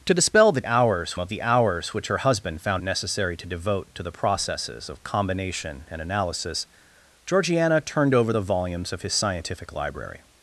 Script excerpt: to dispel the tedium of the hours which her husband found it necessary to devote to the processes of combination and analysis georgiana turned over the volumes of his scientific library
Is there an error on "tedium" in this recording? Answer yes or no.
yes